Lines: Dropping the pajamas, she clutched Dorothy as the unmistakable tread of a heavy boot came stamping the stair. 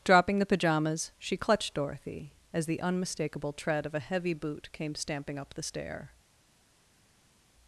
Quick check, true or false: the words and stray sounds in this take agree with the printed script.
false